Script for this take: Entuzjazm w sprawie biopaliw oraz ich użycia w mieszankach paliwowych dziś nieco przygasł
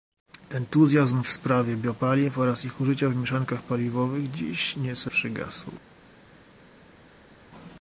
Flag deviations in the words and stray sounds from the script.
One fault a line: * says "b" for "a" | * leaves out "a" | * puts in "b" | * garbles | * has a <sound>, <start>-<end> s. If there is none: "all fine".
all fine